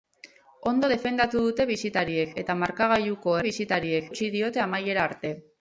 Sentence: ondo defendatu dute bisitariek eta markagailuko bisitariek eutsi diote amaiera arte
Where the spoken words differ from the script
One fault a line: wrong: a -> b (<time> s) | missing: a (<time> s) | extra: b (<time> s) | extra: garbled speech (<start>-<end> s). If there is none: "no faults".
no faults